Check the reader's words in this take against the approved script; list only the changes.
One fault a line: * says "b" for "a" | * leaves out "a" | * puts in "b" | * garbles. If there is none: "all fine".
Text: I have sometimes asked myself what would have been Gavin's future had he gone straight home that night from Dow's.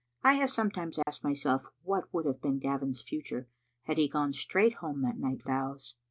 * leaves out "from"